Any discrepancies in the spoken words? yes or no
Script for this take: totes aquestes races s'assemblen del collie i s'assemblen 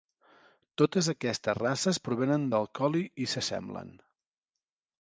yes